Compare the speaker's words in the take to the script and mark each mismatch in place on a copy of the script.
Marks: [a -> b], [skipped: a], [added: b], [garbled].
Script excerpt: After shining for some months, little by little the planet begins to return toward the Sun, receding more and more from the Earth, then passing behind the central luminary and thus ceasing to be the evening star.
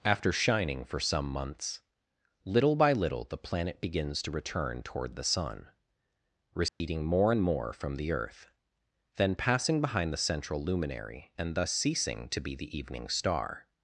After shining for some months, little by little the planet begins to return toward the Sun, receding more and more from the Earth, then passing behind the central luminary and thus ceasing to be the evening star.